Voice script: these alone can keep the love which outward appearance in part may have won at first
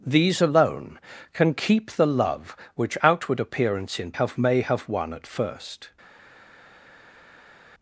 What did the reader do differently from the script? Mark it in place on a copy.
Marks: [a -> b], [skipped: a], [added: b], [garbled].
these alone can keep the love which outward appearance in [part -> have] may have won at first